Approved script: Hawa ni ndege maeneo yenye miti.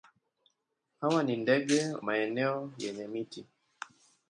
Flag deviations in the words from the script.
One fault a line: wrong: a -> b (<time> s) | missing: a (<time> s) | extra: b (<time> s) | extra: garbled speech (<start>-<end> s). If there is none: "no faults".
no faults